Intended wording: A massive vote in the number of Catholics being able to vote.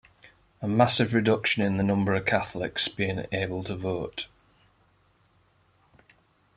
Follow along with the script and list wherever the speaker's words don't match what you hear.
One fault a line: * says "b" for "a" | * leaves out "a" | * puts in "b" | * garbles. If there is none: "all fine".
* says "reduction" for "vote"